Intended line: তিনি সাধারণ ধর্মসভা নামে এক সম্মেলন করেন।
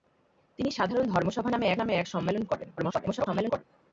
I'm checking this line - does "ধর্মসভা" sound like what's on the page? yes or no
yes